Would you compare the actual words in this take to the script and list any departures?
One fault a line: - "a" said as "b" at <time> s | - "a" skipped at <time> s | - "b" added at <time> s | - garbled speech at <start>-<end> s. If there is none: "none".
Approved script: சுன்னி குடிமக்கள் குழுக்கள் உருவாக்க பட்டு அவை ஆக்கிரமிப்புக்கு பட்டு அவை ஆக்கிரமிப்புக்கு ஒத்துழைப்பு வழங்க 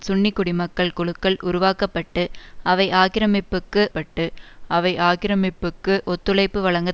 none